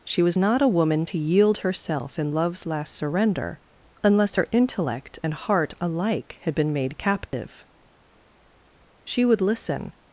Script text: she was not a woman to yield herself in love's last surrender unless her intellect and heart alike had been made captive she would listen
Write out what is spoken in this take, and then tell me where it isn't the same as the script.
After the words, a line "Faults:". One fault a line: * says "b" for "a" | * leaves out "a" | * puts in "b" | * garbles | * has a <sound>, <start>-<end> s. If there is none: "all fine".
she was not a woman to yield herself in love's last surrender unless her intellect and heart alike had been made captive she would listen
Faults:
* has a dropout, 7.3-7.3 s